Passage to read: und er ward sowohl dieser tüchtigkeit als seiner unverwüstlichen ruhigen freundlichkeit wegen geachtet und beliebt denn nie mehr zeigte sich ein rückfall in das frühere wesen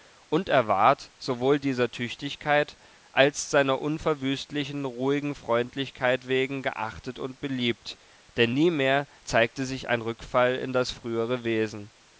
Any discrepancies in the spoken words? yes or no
no